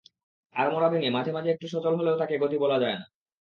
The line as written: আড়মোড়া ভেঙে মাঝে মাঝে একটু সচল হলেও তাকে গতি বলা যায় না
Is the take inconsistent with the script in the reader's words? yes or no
no